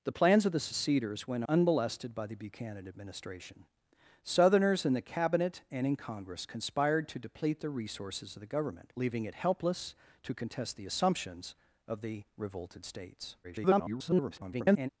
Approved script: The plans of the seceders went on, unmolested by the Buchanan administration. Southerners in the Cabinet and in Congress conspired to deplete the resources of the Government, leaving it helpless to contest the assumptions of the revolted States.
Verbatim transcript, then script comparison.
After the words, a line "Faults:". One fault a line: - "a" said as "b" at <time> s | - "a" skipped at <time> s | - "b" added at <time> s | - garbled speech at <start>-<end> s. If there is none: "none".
The plans of the seceders went unmolested by the Buchanan administration. Southerners in the Cabinet and in Congress conspired to deplete the resources of the Government, leaving it helpless to contest the assumptions of the revolted States. [garbled]
Faults:
- "on" skipped at 1.4 s
- garbled speech at 13.4-14.9 s